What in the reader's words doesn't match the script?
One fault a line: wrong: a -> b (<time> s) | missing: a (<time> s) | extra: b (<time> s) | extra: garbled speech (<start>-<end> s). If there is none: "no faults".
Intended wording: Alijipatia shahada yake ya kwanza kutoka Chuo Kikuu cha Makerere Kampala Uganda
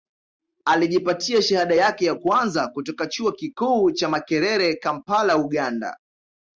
no faults